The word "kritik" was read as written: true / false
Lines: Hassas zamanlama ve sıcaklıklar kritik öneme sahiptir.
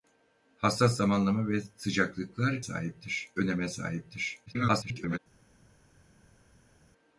false